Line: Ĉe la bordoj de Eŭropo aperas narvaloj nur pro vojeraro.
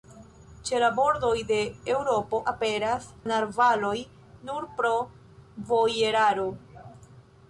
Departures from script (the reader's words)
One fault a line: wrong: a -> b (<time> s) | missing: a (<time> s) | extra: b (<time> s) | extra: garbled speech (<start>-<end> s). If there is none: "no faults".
no faults